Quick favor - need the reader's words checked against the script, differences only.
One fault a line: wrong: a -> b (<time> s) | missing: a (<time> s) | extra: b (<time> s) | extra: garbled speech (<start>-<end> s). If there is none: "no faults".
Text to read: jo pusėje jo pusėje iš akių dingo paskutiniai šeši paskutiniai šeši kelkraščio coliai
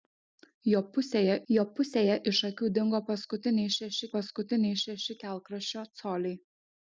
no faults